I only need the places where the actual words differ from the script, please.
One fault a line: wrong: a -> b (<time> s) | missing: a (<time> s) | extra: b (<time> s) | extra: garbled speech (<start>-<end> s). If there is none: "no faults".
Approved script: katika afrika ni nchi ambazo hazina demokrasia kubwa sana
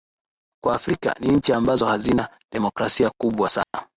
wrong: katika -> kwa (0.6 s)